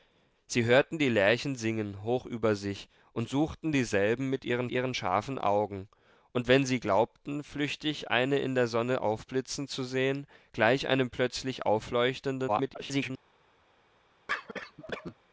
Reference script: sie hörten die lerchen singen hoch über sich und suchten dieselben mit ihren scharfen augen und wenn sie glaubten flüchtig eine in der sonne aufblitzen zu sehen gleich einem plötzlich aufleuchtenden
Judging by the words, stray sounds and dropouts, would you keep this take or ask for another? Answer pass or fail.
fail